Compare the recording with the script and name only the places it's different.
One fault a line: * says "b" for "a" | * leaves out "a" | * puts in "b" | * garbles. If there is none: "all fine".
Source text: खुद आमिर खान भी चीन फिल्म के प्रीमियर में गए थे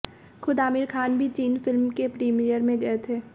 all fine